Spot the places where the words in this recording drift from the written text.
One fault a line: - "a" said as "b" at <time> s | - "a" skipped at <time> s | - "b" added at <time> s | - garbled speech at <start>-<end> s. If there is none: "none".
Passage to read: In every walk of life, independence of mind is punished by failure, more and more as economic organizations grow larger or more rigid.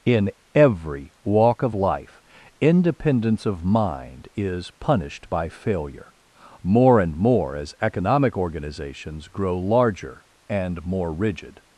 - "or" said as "and" at 10.5 s